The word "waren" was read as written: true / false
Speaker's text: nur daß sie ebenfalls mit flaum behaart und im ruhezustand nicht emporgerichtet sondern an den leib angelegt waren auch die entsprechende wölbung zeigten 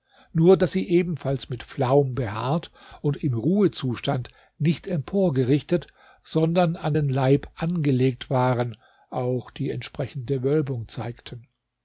true